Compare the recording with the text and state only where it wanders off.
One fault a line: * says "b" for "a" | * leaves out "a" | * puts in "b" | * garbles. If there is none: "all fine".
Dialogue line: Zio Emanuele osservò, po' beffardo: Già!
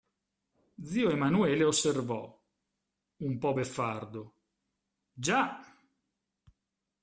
* puts in "un"